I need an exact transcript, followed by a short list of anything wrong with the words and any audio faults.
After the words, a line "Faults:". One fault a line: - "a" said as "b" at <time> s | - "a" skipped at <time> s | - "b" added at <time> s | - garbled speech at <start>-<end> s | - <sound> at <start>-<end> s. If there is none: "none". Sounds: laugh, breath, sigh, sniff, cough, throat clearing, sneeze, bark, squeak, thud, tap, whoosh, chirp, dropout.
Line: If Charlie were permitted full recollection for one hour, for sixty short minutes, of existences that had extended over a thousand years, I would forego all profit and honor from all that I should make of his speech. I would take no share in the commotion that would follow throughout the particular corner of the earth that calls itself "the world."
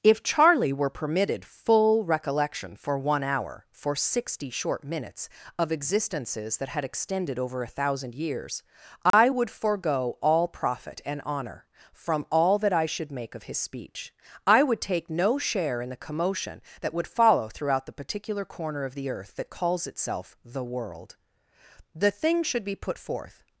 If Charlie were permitted full recollection for one hour, for sixty short minutes, of existences that had extended over a thousand years, I would forego all profit and honor from all that I should make of his speech. I would take no share in the commotion that would follow throughout the particular corner of the earth that calls itself "the world." The thing should be put forth
Faults:
- dropout at 9.1-9.1 s
- "The thing should be put forth" added at 21.9 s